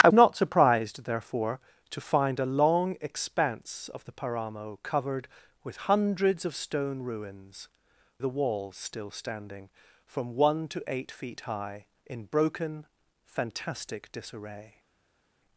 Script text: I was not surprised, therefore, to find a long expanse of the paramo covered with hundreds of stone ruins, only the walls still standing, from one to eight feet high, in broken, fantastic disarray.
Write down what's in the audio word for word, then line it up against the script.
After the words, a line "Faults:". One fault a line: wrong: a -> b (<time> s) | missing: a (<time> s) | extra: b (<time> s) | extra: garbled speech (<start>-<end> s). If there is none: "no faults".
I not surprised, therefore, to find a long expanse of the paramo covered with hundreds of stone ruins, the walls still standing, from one to eight feet high, in broken, fantastic disarray.
Faults:
missing: was (0.1 s)
missing: only (7.7 s)